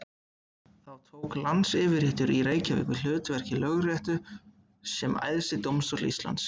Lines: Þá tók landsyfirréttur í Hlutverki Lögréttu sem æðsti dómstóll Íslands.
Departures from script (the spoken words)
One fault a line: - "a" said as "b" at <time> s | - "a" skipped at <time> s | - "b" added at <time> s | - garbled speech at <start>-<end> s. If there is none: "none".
- "Reykjavík við" added at 2.5 s